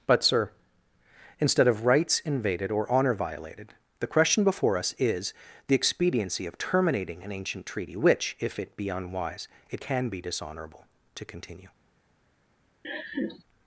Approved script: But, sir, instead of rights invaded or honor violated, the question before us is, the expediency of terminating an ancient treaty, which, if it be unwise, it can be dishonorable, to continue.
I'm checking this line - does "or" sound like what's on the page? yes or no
yes